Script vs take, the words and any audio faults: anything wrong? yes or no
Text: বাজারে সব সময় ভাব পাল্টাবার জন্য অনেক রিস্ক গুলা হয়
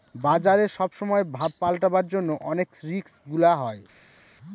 no